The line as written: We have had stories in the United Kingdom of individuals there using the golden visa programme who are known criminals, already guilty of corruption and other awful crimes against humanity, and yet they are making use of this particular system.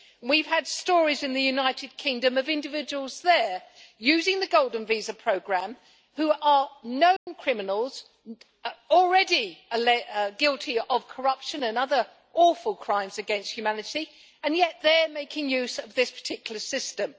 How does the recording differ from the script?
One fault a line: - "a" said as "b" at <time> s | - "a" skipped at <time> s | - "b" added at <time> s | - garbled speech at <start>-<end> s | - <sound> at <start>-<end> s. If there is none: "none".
- dropout at 7.2-7.3 s